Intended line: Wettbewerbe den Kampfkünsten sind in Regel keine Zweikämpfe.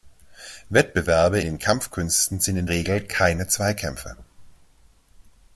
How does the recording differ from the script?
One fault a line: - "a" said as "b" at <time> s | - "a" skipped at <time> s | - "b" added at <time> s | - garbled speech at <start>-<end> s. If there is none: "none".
none